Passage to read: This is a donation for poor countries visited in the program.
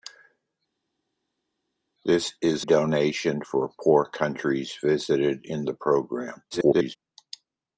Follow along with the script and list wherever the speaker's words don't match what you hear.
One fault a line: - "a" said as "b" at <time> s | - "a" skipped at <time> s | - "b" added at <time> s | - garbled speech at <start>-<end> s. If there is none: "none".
- "a" skipped at 2.7 s
- garbled speech at 6.5-7.0 s